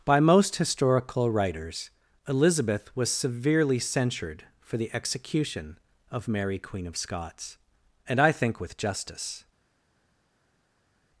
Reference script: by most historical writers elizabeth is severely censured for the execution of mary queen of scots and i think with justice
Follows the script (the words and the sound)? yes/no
no